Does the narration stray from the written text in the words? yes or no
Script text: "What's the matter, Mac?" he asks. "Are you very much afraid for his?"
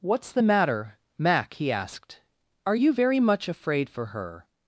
yes